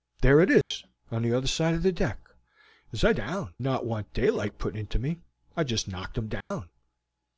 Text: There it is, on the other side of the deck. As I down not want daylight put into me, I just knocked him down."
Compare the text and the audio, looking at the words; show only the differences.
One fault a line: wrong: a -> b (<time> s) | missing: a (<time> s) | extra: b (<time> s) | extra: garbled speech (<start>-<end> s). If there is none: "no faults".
no faults